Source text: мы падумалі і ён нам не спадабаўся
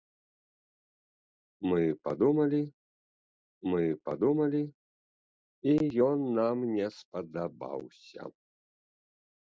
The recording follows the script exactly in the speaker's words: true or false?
false